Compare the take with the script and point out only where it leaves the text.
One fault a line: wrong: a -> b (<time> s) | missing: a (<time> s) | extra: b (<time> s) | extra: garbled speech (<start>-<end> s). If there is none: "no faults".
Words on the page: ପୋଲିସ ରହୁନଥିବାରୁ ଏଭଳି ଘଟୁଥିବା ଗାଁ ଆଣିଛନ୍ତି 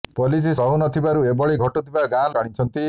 no faults